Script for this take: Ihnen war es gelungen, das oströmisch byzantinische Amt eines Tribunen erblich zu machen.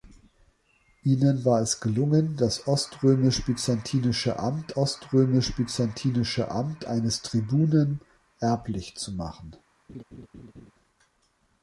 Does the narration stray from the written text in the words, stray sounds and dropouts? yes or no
yes